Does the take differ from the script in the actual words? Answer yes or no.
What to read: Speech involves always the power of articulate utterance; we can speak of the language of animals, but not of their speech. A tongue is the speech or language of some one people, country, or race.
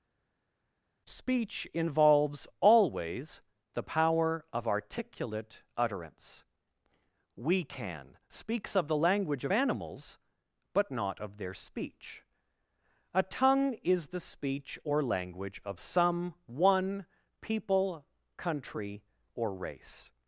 yes